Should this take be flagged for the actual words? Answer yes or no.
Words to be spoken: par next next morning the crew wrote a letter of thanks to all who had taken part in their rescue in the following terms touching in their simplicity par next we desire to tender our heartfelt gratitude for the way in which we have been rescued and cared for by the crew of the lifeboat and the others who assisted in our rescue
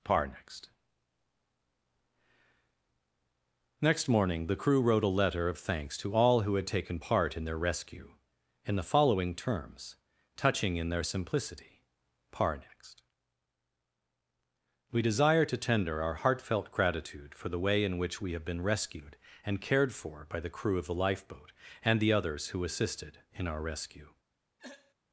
no